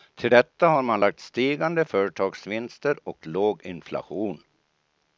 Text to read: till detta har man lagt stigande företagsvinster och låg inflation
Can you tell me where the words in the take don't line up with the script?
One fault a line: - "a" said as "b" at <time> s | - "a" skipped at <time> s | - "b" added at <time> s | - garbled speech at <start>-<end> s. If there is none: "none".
none